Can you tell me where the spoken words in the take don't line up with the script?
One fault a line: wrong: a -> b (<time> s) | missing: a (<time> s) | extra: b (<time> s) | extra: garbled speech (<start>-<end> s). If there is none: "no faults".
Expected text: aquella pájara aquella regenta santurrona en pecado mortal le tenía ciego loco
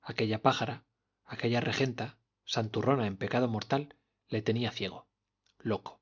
no faults